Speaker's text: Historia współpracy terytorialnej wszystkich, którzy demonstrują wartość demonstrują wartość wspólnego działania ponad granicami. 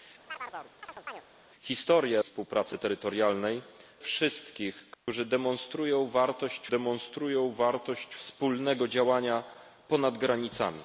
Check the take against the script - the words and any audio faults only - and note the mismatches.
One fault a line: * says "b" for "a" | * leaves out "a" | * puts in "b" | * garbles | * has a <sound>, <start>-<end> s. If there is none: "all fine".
* has a chirp, 0.3-1.2 s
* has a dropout, 4.9-5.1 s